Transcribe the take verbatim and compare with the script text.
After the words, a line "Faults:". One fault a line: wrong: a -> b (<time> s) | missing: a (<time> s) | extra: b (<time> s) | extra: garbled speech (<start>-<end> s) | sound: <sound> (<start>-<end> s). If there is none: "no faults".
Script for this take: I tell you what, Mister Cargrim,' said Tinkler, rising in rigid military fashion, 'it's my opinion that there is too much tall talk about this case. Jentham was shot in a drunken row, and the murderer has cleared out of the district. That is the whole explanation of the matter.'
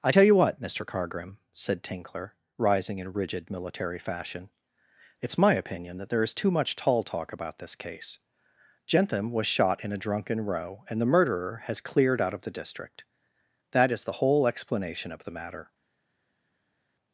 I tell you what, Mister Cargrim,' said Tinkler, rising in rigid military fashion, 'it's my opinion that there is too much tall talk about this case. Jentham was shot in a drunken row, and the murderer has cleared out of the district. That is the whole explanation of the matter.'
Faults:
no faults